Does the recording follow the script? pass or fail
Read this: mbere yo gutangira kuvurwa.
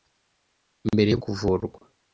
fail